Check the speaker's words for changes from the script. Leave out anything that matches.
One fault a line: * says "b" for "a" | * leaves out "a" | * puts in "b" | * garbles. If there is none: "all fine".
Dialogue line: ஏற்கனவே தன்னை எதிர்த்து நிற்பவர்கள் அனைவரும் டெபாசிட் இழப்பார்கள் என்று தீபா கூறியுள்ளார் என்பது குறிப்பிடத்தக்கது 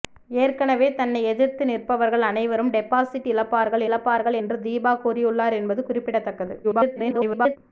* puts in "இழப்பார்கள்"
* garbles